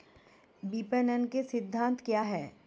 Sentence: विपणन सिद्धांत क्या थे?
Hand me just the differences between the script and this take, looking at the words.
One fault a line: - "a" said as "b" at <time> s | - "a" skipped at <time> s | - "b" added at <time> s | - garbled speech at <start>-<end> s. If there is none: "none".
- "के" added at 1.2 s
- "थे" said as "हैं" at 2.2 s